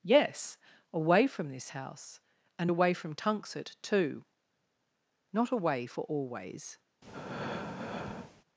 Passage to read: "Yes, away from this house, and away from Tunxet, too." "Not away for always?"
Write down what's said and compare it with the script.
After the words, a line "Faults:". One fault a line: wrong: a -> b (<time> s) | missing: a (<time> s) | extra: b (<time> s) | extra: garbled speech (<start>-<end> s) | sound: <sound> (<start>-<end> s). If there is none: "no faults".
"Yes, away from this house, and away from Tunxet, too." "Not away for always?"
Faults:
sound: breath (7.0-8.4 s)